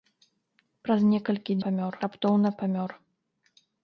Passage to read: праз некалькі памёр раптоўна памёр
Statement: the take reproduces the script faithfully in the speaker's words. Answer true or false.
true